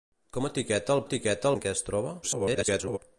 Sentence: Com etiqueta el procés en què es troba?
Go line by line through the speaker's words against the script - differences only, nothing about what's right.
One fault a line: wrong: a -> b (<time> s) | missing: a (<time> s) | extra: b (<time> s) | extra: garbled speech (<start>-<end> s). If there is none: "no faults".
wrong: procés -> etiqueta (1.0 s)
extra: garbled speech (2.2-3.0 s)